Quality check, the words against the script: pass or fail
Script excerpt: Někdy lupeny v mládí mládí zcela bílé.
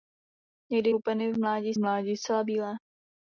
pass